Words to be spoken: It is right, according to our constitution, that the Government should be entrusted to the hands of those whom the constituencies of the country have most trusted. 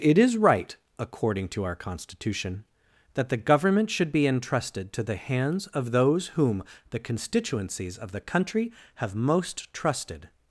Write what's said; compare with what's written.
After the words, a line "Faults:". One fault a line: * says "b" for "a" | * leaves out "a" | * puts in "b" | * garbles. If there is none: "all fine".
It is right, according to our constitution, that the Government should be entrusted to the hands of those whom the constituencies of the country have most trusted.
Faults:
all fine